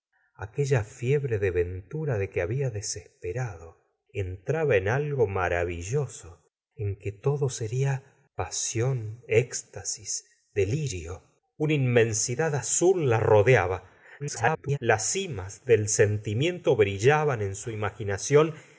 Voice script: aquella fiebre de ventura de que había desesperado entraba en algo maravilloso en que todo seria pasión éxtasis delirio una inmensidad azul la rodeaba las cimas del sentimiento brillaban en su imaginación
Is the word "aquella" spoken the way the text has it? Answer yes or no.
yes